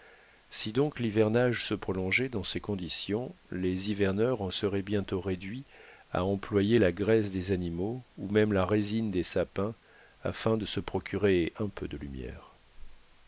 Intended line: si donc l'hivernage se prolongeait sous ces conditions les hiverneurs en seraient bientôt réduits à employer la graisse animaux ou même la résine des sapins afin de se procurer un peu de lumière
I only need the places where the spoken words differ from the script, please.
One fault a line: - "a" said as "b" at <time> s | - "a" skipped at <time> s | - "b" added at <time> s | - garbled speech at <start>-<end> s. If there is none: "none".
- "sous" said as "dans" at 2.3 s
- "des" added at 7.3 s